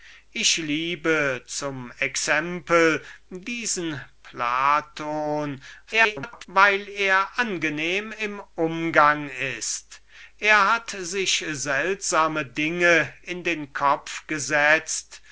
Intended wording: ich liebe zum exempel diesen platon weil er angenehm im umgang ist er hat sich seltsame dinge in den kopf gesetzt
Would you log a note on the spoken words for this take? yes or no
yes